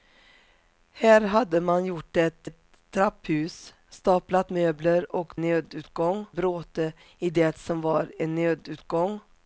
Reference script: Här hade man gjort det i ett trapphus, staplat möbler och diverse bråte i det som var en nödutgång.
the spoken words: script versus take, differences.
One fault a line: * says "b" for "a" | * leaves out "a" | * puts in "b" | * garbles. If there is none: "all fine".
* leaves out "i"
* says "nödutgång" for "diverse"